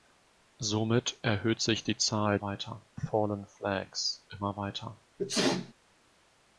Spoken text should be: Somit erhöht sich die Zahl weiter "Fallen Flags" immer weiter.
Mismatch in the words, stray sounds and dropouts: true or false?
true